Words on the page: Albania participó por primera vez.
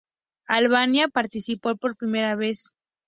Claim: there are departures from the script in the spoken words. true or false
false